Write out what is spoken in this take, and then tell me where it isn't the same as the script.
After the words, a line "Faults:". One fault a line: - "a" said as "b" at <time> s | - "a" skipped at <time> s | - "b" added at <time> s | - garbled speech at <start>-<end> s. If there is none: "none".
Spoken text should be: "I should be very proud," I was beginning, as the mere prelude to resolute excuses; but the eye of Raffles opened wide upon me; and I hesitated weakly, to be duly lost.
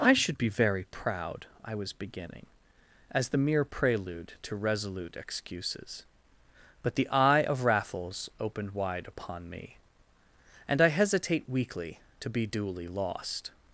"I should be very proud," I was beginning, as the mere prelude to resolute excuses; but the eye of Raffles opened wide upon me; and I hesitate weakly, to be duly lost.
Faults:
- "hesitated" said as "hesitate" at 10.9 s